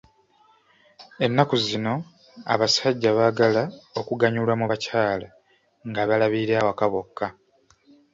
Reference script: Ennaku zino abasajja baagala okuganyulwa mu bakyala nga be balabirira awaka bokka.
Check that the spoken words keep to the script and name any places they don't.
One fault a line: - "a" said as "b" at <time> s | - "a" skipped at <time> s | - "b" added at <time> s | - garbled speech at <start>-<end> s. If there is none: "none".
- "be" skipped at 6.0 s